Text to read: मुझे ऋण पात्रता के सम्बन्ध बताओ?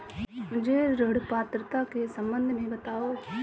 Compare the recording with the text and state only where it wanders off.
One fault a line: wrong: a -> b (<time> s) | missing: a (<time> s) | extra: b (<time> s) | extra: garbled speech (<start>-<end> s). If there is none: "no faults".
extra: में (2.5 s)